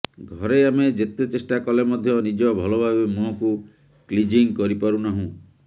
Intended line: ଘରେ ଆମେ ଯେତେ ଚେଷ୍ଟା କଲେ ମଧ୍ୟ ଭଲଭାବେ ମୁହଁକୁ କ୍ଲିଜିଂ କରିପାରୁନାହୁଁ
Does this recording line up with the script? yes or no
no